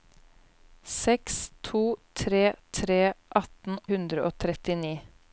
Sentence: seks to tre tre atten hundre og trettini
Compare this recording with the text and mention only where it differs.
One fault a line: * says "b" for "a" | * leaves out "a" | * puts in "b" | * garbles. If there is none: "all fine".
all fine